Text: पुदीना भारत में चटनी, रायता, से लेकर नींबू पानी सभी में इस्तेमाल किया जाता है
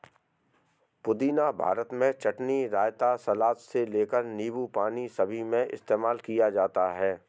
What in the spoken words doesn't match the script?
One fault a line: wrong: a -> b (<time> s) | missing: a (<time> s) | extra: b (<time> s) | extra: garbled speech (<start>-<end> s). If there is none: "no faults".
extra: सलाद (3.1 s)